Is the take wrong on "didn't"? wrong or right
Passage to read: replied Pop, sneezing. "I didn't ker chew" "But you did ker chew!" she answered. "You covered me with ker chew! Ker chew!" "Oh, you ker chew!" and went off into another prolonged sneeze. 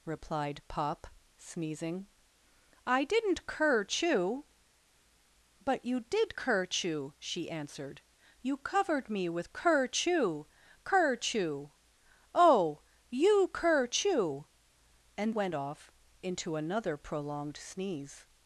right